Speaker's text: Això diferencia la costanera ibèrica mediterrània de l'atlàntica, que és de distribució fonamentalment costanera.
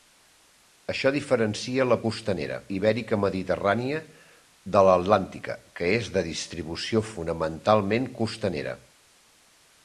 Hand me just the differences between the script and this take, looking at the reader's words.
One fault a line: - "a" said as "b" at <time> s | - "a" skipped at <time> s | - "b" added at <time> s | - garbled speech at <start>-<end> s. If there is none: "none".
none